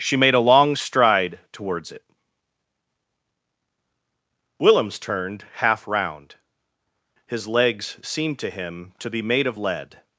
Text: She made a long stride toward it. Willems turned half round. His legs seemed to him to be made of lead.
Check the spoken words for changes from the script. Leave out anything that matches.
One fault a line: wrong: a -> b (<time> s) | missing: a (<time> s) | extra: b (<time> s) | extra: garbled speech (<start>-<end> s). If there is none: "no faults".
wrong: toward -> towards (1.5 s)